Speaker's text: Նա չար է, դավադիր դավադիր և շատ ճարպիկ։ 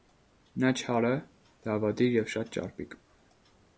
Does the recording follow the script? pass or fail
fail